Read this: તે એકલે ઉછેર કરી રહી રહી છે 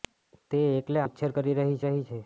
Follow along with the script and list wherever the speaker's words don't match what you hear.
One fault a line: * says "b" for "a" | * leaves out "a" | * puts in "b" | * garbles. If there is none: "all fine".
all fine